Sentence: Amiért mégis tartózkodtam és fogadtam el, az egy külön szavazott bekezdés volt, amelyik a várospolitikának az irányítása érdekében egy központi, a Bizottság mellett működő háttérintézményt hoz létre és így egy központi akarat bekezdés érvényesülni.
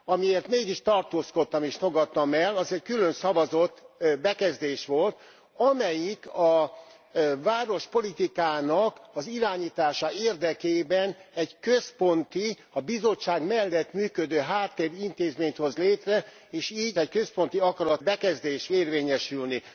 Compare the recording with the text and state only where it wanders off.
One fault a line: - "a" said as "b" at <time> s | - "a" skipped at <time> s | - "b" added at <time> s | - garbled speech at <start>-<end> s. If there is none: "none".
none